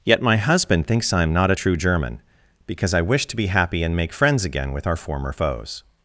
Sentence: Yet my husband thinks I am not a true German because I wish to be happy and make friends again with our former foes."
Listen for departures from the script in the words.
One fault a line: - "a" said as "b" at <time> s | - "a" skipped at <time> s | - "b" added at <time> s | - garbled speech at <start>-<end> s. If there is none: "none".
none